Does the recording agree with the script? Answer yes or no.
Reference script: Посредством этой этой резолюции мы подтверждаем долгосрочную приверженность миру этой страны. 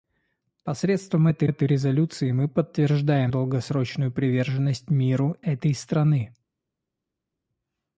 yes